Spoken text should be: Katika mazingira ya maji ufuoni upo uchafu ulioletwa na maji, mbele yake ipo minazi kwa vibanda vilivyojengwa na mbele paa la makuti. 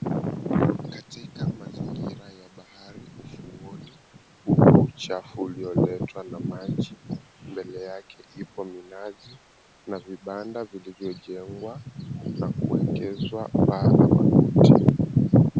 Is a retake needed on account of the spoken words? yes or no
yes